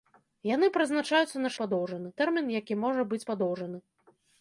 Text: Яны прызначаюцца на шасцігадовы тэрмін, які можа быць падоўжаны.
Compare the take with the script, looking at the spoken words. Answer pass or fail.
fail